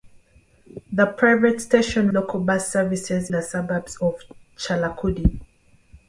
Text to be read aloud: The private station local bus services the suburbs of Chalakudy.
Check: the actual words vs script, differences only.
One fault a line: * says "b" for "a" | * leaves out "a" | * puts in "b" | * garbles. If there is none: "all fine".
all fine